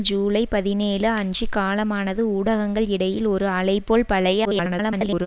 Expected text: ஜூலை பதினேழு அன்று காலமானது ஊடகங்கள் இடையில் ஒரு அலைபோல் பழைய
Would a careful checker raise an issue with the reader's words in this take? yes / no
yes